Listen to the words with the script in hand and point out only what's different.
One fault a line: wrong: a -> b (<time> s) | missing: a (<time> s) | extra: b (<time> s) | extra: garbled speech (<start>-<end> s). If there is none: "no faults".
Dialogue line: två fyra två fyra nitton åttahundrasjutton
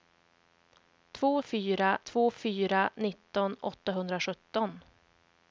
no faults